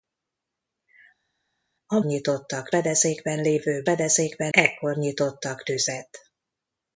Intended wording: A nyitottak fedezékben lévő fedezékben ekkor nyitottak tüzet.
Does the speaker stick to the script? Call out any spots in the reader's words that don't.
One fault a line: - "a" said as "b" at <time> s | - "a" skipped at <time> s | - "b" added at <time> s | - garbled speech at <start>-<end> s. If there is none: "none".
none